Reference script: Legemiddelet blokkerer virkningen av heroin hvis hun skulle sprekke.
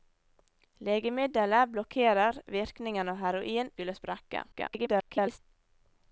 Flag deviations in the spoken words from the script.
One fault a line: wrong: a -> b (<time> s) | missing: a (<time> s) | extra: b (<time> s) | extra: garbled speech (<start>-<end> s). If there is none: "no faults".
missing: hvis hun (3.7 s)
extra: garbled speech (4.5-5.4 s)